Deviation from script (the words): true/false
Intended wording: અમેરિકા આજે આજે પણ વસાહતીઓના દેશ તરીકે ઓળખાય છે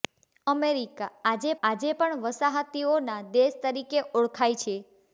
false